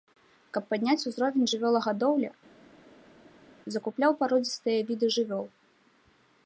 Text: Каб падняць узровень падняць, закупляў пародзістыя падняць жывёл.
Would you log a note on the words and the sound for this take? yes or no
yes